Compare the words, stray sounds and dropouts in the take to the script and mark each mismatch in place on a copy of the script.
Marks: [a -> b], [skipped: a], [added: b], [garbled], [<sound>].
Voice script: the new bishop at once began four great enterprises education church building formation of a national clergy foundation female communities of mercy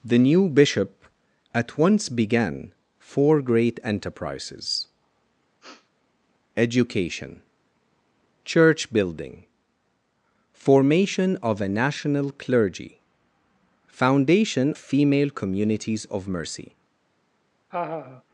the new bishop at once began four great enterprises [sniff] education church building formation of a national clergy foundation female communities of mercy [laugh]